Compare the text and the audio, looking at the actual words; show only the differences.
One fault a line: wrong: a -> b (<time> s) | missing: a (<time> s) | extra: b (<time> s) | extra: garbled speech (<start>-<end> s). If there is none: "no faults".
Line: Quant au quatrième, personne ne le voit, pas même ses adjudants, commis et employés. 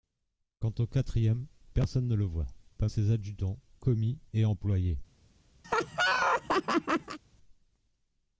missing: même (2.9 s)